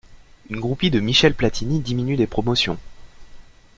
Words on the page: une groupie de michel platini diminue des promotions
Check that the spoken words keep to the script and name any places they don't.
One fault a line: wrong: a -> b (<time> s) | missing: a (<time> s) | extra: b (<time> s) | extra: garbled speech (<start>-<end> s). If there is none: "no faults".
no faults